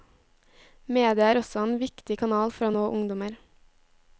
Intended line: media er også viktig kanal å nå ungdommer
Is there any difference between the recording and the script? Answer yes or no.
yes